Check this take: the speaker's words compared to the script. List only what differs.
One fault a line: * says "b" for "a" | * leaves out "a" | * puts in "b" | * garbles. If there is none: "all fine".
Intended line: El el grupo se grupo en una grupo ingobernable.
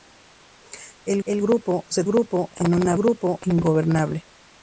all fine